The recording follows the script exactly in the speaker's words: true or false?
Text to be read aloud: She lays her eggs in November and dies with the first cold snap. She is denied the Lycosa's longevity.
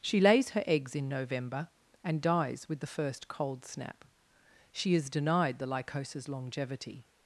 true